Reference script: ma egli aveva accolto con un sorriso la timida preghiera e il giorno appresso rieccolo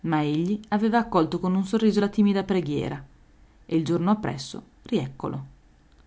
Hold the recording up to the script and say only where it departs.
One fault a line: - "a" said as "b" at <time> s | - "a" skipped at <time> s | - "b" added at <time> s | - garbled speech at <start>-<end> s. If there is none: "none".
none